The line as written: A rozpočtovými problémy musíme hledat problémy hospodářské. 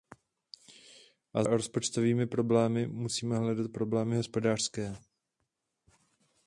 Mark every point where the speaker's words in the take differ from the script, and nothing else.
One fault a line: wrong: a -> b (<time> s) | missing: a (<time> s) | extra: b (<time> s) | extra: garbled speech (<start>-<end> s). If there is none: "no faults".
no faults